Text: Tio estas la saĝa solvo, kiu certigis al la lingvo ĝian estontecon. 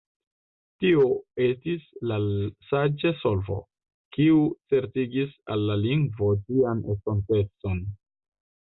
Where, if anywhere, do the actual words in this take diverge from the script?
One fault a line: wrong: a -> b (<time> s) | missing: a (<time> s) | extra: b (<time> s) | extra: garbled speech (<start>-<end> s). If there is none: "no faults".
wrong: estas -> estis (1.5 s)